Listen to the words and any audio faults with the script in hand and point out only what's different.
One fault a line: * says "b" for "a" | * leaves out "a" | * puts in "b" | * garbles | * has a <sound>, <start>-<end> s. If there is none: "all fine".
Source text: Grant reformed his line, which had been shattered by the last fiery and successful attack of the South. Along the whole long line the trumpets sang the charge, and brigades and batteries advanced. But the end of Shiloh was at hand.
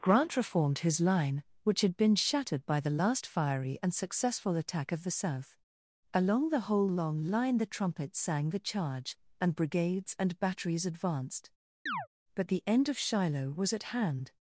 * has a chirp, 11.9-12.1 s